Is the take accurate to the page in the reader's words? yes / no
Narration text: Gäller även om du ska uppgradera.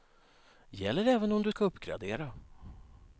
yes